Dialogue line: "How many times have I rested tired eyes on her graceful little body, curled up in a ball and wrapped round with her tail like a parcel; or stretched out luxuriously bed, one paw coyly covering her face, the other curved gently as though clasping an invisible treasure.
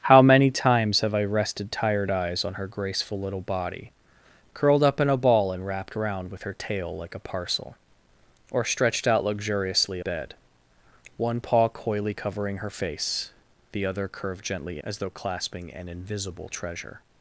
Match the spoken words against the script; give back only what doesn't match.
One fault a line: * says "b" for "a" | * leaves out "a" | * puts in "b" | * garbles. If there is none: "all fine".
all fine